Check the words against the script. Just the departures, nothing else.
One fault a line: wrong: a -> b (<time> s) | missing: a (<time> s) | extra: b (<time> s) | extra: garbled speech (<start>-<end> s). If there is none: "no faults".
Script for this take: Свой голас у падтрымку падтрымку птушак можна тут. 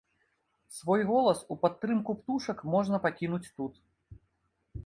missing: падтрымку (2.1 s)
extra: пакінуць (3.1 s)